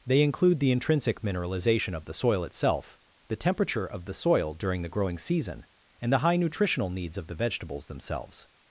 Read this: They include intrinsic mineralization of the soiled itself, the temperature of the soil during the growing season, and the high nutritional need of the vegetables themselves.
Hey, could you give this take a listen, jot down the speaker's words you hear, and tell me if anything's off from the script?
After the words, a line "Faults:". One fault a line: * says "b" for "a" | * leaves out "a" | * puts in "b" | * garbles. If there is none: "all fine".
They include the intrinsic mineralization of the soil itself, the temperature of the soil during the growing season, and the high nutritional needs of the vegetables themselves.
Faults:
* puts in "the"
* says "soil" for "soiled"
* says "needs" for "need"